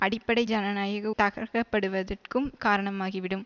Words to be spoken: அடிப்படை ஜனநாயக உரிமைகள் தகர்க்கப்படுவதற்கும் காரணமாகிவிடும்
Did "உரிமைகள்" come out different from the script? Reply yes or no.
yes